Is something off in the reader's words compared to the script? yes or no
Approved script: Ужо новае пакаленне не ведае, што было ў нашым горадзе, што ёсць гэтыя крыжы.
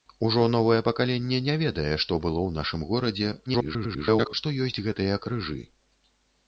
yes